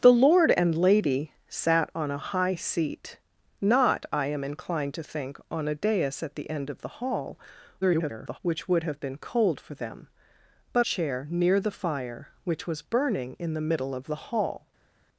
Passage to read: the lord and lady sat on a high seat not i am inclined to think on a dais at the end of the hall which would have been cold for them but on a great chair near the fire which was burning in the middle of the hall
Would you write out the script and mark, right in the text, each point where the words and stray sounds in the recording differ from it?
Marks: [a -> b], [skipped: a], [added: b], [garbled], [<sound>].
the lord and lady sat on a high seat not i am inclined to think on a dais at the end of the hall [garbled] which would have been cold for them but [skipped: on a great] chair near the fire which was burning in the middle of the hall